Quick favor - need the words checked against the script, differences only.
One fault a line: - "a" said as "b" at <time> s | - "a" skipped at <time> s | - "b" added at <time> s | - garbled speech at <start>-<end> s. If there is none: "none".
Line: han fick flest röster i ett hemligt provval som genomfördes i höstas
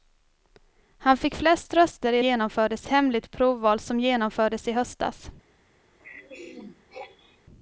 - "ett" said as "genomfördes" at 2.2 s